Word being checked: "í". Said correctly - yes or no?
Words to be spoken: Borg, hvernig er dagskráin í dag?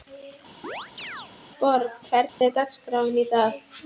yes